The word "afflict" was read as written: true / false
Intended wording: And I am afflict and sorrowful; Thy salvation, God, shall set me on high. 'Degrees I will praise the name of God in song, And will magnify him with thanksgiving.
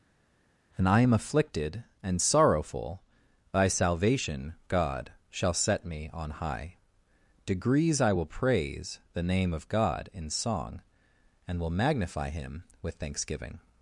false